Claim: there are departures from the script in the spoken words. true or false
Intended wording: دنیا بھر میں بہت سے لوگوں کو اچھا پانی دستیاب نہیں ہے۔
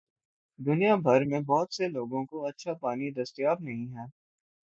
false